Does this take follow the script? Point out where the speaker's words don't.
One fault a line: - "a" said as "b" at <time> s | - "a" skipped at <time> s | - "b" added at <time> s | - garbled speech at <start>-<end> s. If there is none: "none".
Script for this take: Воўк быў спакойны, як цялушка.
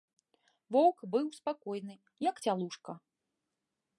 none